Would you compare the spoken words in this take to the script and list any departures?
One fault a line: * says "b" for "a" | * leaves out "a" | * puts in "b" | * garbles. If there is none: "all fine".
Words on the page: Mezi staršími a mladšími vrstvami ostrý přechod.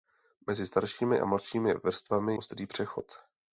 all fine